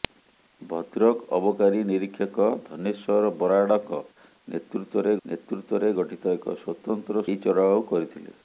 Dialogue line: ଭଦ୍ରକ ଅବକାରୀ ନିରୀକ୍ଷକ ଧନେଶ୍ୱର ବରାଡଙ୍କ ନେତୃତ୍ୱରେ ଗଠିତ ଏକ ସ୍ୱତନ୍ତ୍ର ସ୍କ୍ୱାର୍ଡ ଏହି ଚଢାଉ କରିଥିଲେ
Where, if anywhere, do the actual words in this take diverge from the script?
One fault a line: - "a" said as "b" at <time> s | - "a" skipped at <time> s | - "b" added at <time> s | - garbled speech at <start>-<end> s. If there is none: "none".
- "ନେତୃତ୍ୱରେ" added at 5.2 s
- "ସ୍କ୍ୱାର୍ଡ" skipped at 7.2 s